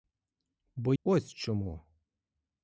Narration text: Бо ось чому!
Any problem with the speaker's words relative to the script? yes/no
no